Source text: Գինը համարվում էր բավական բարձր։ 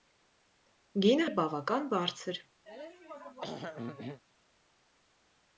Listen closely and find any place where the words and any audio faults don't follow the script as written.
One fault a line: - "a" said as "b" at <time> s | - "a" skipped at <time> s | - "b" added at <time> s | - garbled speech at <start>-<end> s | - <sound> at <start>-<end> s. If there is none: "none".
- "համարվում" skipped at 1.3 s
- throat clearing at 2.7-4.2 s